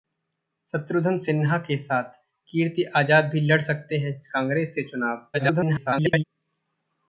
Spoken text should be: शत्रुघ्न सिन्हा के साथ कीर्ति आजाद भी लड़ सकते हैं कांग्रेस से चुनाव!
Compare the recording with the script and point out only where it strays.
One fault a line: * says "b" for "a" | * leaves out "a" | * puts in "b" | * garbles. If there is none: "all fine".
* garbles